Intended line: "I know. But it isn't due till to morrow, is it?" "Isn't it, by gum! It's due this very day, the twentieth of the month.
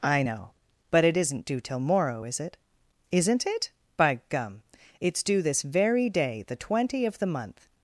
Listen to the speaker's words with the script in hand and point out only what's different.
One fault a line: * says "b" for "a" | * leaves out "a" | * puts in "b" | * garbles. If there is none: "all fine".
* leaves out "to"
* says "twenty" for "twentieth"